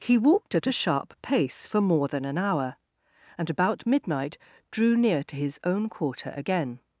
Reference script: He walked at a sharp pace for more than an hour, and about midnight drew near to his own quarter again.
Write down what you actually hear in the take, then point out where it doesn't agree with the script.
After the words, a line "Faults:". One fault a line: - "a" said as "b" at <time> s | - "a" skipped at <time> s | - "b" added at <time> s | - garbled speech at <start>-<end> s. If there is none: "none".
He walked at a sharp pace for more than an hour, and about midnight drew near to his own quarter again.
Faults:
none